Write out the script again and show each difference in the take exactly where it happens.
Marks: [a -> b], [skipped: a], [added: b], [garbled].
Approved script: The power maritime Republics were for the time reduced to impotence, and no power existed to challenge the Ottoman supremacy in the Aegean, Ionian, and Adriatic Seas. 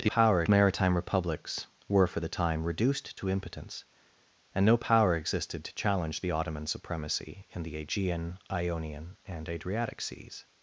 The power maritime Republics were for the time reduced to impotence, and no power existed to challenge the Ottoman supremacy in the Aegean, Ionian, and Adriatic Seas.